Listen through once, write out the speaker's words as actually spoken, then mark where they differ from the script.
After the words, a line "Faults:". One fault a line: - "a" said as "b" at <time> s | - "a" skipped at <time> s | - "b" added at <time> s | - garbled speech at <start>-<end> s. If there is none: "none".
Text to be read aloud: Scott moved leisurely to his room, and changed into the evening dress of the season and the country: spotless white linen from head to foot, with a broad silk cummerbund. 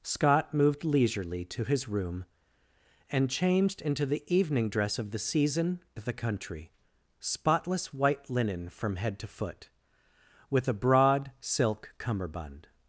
Scott moved leisurely to his room, and changed into the evening dress of the season the country: spotless white linen from head to foot, with a broad silk cummerbund.
Faults:
- "and" skipped at 5.8 s